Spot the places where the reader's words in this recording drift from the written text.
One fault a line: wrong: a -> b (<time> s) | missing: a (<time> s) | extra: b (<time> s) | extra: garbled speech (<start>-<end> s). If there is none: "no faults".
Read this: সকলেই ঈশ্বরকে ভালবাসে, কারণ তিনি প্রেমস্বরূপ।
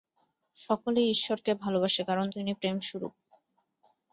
no faults